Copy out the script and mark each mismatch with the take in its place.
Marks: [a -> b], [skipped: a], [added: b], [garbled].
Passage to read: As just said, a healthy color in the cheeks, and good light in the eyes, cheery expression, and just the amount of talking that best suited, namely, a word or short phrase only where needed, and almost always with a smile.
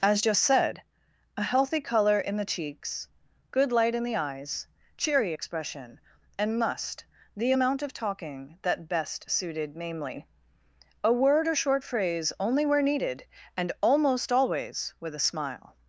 As just said, a healthy color in the cheeks, [skipped: and] good light in the eyes, cheery expression, and [just -> must] the amount of talking that best suited, namely, a word or short phrase only where needed, and almost always with a smile.